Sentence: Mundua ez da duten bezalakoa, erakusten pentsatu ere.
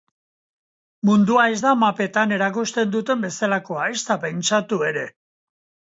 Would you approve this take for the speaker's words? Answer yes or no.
no